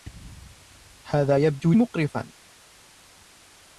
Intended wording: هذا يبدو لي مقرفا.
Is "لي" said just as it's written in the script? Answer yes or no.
no